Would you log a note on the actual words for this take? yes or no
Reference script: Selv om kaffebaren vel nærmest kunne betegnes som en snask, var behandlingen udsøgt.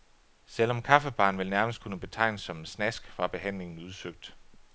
no